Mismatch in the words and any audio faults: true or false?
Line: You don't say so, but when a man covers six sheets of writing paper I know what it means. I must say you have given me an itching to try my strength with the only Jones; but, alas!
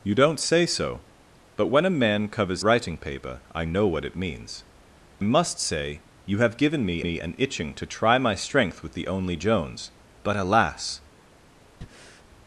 true